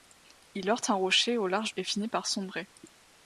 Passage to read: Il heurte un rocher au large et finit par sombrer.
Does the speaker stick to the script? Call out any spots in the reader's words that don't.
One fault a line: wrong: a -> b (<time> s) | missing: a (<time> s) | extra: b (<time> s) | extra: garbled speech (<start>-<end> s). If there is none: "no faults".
no faults